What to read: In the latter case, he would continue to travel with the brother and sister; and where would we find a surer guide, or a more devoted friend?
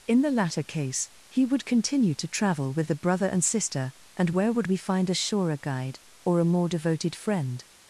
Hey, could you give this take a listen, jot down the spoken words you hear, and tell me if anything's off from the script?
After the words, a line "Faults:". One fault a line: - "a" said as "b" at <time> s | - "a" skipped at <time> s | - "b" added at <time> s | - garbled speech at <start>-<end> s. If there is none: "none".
In the latter case, he would continue to travel with the brother and sister; and where would we find a surer guide, or a more devoted friend?
Faults:
none